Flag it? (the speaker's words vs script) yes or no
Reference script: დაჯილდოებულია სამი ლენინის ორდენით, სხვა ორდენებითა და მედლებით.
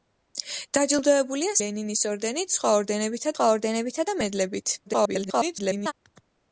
yes